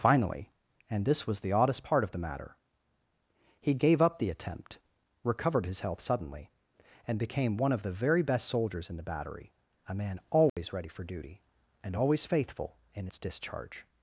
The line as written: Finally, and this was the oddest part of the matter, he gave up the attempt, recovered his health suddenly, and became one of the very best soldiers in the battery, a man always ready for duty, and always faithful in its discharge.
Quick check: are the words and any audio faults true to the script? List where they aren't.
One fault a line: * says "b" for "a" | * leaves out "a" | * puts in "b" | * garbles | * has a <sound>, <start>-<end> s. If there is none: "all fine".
* has a dropout, 10.5-10.6 s